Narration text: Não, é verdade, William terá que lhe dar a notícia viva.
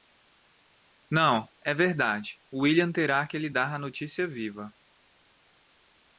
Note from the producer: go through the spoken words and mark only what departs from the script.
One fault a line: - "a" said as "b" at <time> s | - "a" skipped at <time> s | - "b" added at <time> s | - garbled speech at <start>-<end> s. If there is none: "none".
none